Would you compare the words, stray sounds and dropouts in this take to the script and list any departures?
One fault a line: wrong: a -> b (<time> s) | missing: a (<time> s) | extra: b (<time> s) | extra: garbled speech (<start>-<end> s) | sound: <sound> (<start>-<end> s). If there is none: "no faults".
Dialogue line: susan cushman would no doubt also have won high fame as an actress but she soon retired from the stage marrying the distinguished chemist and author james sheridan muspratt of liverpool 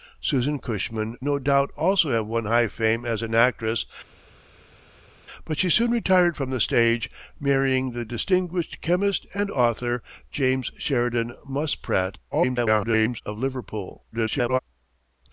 missing: would (1.1 s)
extra: garbled speech (12.3-13.2 s)
extra: garbled speech (14.1-14.6 s)